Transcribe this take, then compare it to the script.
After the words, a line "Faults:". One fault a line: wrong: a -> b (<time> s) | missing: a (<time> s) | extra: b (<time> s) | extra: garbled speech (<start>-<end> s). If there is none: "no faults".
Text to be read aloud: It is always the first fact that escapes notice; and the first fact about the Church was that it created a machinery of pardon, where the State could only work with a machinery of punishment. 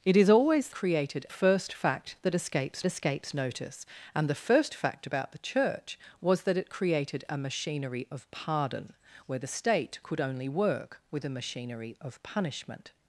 It is always created first fact that escapes escapes notice; and the first fact about the Church was that it created a machinery of pardon, where the State could only work with a machinery of punishment.
Faults:
wrong: the -> created (0.7 s)
extra: escapes (2.9 s)